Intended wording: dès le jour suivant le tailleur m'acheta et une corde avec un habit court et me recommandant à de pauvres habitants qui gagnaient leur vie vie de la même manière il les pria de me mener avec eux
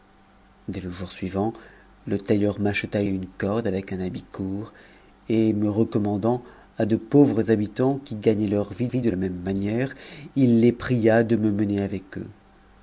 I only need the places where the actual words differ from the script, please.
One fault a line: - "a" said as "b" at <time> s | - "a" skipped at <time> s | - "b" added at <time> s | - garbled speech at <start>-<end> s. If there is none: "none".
none